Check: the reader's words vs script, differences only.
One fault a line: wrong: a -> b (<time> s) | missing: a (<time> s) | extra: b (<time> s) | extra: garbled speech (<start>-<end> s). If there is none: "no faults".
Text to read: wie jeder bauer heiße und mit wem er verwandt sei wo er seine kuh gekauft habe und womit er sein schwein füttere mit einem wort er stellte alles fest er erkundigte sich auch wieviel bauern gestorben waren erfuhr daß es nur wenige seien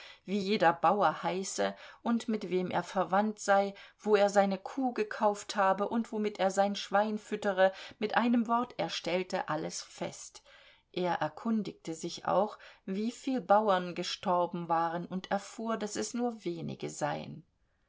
extra: und (15.1 s)